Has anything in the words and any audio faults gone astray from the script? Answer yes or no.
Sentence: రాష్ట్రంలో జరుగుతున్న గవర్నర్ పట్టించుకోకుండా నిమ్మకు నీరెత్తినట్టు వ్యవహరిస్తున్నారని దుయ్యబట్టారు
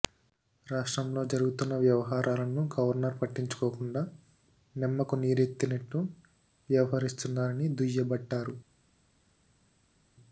yes